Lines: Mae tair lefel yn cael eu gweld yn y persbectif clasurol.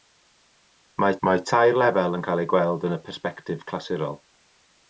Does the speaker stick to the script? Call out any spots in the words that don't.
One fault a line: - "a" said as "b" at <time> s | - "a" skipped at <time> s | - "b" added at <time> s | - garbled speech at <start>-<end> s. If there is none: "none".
- "mae" added at 1.3 s